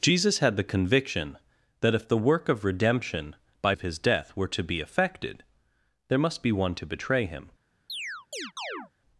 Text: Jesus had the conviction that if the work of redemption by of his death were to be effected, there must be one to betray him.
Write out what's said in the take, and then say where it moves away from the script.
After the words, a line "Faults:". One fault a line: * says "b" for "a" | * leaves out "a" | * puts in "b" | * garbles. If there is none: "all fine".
Jesus had the conviction that if the work of redemption by of his death were to be effected, there must be one to betray him.
Faults:
all fine